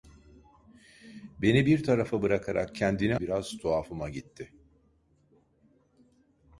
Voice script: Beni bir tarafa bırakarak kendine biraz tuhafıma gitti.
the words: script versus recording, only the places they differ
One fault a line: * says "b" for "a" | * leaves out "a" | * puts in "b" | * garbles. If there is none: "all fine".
all fine